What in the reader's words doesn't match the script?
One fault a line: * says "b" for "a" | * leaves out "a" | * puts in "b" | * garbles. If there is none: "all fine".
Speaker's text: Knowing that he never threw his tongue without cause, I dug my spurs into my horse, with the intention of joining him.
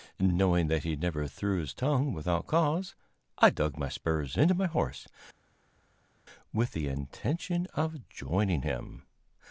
all fine